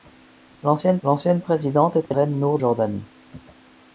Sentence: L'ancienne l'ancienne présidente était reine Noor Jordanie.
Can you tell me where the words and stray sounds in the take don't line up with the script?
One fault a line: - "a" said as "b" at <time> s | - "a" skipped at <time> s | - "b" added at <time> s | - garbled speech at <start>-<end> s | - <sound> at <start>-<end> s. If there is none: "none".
- dropout at 2.1-2.1 s